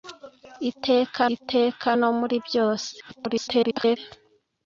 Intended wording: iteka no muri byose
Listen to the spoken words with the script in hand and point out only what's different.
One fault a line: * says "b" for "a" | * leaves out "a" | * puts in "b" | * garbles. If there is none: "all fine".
* puts in "iteka"
* garbles